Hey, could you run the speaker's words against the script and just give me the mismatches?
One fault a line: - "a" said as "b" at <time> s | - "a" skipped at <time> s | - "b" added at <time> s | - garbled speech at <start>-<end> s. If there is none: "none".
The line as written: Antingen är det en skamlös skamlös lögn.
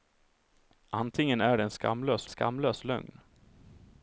none